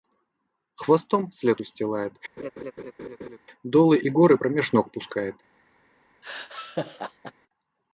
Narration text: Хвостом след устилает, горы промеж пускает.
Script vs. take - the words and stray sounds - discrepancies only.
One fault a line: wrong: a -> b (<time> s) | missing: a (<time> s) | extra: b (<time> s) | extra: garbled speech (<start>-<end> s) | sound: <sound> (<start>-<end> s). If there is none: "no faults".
sound: laugh (2.4-3.4 s)
extra: долы и (3.6 s)
extra: ног (4.7 s)
sound: laugh (6.2-7.3 s)